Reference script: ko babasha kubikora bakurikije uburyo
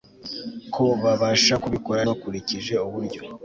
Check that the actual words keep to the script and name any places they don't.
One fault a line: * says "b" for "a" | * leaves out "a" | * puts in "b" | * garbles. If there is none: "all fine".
all fine